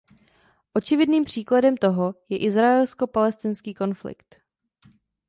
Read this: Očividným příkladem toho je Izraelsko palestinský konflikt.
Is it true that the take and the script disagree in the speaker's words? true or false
false